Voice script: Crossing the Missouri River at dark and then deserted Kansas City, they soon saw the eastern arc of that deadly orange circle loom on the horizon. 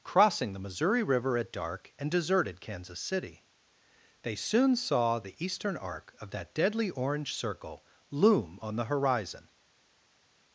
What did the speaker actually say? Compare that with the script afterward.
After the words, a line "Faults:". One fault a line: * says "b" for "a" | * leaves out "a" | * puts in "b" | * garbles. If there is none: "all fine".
Crossing the Missouri River at dark and deserted Kansas City, they soon saw the eastern arc of that deadly orange circle loom on the horizon.
Faults:
* leaves out "then"